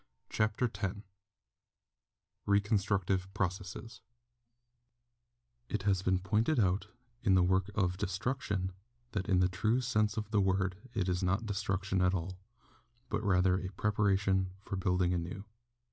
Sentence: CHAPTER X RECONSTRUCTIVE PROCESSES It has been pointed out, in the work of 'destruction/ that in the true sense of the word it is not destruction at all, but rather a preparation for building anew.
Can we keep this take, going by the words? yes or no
yes